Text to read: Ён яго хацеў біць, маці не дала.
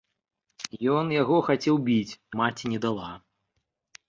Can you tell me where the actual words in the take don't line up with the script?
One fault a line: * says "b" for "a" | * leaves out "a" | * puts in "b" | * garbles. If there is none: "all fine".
all fine